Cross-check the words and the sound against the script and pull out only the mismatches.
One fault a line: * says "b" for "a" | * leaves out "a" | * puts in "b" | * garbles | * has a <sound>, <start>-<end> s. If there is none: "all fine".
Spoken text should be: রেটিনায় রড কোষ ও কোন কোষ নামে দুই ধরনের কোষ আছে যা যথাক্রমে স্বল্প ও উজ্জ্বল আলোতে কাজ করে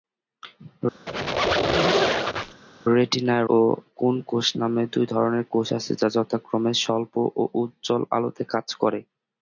* has a squeak, 1.1-2.6 s
* leaves out "রড কোষ"